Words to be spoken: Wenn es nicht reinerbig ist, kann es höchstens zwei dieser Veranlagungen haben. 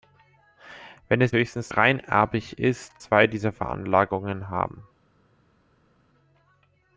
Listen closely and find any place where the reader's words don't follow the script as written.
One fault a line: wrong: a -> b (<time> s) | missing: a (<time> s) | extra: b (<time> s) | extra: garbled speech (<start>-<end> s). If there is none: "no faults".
wrong: nicht -> höchstens (1.3 s)
missing: kann es höchstens (3.0 s)